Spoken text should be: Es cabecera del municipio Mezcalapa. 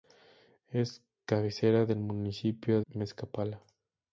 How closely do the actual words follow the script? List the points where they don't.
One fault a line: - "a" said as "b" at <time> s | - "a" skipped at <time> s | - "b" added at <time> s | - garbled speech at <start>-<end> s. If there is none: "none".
none